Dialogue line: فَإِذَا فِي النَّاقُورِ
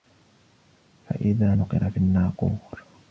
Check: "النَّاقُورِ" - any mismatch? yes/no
no